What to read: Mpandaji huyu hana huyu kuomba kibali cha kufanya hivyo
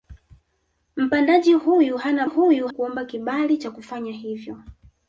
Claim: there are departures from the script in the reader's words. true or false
false